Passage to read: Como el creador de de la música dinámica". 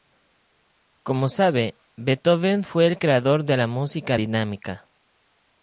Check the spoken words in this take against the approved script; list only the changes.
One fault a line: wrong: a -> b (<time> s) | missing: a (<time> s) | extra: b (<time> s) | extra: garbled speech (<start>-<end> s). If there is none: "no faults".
extra: sabe Beethoven fue (1.3 s)
missing: de (3.6 s)